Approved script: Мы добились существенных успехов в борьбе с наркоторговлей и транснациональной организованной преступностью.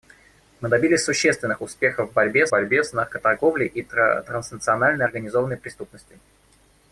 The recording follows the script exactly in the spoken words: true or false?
false